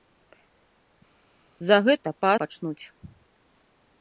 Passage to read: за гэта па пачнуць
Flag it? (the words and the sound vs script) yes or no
no